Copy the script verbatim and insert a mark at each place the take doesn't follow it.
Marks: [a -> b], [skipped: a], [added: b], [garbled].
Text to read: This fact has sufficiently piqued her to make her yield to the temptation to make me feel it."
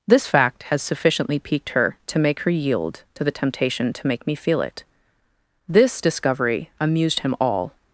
This fact has sufficiently piqued her to make her yield to the temptation to make me feel it." [added: This discovery amused him all]